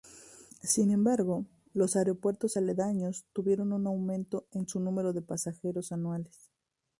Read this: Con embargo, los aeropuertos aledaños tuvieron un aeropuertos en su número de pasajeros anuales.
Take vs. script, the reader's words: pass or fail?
fail